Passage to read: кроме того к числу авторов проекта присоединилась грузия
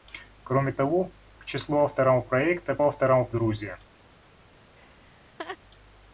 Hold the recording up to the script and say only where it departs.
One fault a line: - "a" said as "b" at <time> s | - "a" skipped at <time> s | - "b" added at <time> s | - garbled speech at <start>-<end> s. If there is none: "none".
- "присоединилась" said as "авторов" at 2.8 s